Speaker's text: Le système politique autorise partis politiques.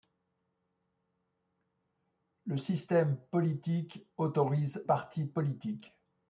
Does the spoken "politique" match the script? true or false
true